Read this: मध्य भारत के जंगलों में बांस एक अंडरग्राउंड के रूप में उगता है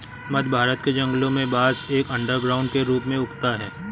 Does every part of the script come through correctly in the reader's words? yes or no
yes